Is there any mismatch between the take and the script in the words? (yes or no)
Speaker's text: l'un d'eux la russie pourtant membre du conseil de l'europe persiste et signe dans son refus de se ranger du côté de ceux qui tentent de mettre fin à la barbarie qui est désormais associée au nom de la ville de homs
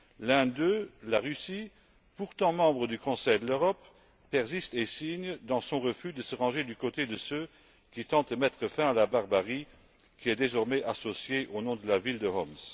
no